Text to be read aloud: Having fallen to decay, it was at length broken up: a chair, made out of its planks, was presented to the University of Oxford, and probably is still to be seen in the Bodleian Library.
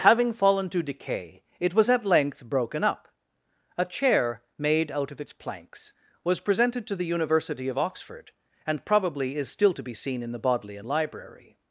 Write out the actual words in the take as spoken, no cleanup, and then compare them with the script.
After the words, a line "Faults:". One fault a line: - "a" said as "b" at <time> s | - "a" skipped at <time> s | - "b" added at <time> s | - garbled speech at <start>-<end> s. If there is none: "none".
Having fallen to decay, it was at length broken up: a chair, made out of its planks, was presented to the University of Oxford, and probably is still to be seen in the Bodleian Library.
Faults:
none